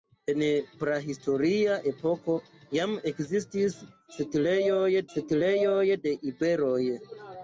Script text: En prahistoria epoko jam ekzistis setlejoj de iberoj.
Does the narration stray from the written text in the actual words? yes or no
yes